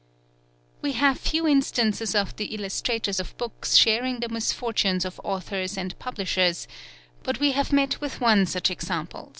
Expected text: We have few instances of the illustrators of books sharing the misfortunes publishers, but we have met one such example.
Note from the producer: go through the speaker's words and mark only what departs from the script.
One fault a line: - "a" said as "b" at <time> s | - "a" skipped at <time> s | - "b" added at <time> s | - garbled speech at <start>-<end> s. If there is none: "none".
- "of authors and" added at 5.0 s
- "with" added at 8.0 s